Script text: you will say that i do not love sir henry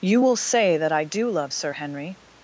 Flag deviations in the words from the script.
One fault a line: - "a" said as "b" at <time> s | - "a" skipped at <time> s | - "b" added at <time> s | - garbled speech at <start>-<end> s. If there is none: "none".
- "not" skipped at 1.3 s